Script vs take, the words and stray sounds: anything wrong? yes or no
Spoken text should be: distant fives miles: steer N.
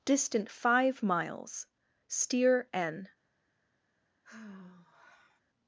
yes